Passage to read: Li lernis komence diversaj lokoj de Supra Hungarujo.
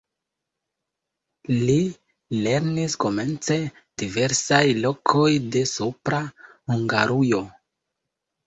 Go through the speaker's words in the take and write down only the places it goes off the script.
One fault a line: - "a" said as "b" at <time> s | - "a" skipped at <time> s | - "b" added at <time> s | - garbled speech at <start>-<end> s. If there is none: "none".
none